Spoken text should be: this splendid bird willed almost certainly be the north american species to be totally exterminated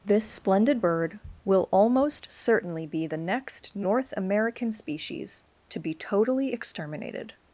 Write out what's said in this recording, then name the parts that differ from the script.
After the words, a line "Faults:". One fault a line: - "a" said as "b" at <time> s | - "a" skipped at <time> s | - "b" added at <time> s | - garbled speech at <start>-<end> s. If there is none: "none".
this splendid bird will almost certainly be the next north american species to be totally exterminated
Faults:
- "willed" said as "will" at 1.4 s
- "next" added at 3.2 s